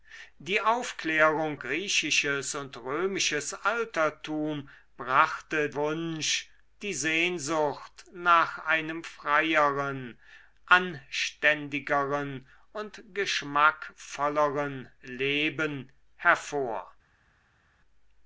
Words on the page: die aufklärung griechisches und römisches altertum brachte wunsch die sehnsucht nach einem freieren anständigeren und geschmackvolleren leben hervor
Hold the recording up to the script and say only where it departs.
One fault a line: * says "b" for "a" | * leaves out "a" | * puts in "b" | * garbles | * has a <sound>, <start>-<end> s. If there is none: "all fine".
all fine